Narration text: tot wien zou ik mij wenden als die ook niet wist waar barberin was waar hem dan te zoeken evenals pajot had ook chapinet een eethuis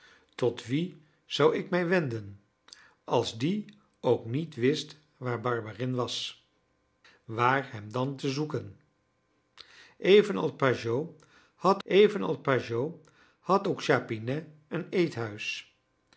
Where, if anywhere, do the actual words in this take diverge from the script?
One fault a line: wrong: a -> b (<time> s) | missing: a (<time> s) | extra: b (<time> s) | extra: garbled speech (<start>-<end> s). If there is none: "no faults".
extra: evenals pajot had (11.8 s)